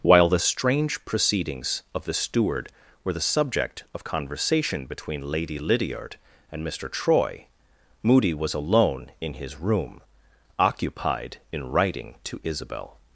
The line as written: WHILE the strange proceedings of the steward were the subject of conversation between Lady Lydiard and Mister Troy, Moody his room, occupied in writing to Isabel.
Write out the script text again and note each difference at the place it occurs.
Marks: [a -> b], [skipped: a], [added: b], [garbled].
WHILE the strange proceedings of the steward were the subject of conversation between Lady Lydiard and Mister Troy, Moody [added: was alone in] his room, occupied in writing to Isabel.